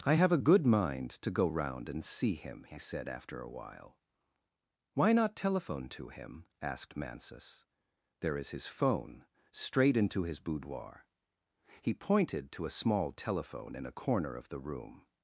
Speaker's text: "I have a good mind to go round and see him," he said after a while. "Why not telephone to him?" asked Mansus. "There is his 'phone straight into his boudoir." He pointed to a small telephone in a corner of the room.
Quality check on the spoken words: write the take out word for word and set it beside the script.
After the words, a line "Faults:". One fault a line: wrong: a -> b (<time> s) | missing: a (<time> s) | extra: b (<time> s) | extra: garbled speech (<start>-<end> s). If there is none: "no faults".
"I have a good mind to go round and see him," he said after a while. "Why not telephone to him?" asked Mansus. "There is his 'phone straight into his boudoir." He pointed to a small telephone in a corner of the room.
Faults:
no faults